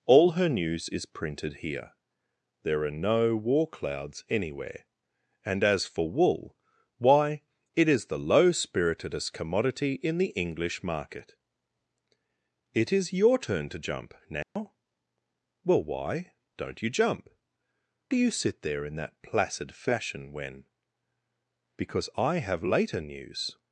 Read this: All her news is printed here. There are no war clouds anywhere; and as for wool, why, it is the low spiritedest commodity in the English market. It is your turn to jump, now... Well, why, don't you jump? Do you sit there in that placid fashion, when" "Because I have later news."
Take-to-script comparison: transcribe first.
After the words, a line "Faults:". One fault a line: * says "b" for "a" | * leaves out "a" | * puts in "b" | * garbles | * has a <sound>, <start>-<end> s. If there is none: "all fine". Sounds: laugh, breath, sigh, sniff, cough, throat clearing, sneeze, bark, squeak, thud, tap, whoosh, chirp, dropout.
All her news is printed here. There are no war clouds anywhere; and as for wool, why, it is the low spiritedest commodity in the English market. It is your turn to jump, now... Well, why, don't you jump? Do you sit there in that placid fashion, when" "Because I have later news."
Faults:
* has a dropout, 14.4-14.6 s